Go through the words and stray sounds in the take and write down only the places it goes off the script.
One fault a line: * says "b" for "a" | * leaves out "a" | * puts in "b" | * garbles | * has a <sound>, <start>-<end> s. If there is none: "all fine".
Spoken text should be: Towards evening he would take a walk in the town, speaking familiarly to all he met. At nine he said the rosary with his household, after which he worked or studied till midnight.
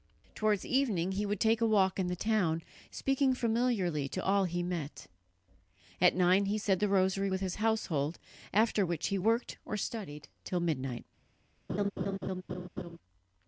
* has a laugh, 11.7-13.0 s